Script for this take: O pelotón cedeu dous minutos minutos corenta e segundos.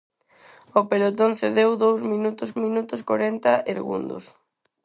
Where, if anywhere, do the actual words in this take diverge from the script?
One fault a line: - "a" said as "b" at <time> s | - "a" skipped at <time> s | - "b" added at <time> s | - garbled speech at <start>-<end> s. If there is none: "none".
none